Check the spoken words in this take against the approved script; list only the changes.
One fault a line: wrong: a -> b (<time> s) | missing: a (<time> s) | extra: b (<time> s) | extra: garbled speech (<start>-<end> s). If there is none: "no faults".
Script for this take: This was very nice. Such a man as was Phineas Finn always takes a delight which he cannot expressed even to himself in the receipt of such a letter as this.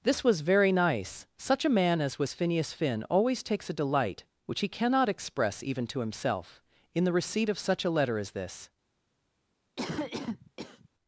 wrong: expressed -> express (5.1 s)